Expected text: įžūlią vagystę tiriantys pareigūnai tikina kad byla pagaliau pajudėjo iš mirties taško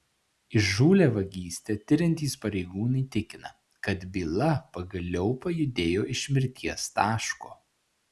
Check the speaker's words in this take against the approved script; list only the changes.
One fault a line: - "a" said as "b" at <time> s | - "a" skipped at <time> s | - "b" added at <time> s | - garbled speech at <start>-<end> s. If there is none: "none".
none